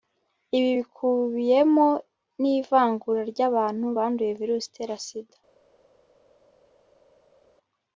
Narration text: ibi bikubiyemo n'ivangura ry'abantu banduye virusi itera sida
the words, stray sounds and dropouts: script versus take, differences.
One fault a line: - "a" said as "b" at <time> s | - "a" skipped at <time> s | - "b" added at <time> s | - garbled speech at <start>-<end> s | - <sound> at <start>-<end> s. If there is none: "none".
none